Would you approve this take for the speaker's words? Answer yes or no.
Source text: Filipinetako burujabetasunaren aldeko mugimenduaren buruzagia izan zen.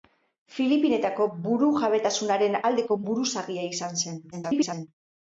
no